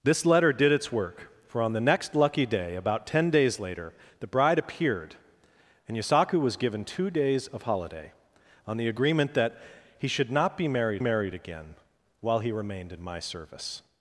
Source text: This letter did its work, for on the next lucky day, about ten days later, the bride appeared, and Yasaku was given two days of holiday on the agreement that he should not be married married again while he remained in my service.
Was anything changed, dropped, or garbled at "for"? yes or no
no